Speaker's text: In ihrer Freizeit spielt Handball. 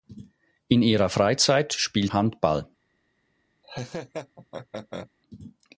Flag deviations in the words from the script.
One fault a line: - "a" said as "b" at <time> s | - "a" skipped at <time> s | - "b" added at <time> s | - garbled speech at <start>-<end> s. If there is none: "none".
none